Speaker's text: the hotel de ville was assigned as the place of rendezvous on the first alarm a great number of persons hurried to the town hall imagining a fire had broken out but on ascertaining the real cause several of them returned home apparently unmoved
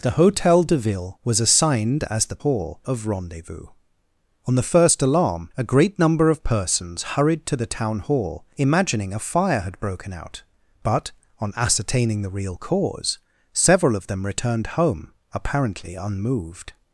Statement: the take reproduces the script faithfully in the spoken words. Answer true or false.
false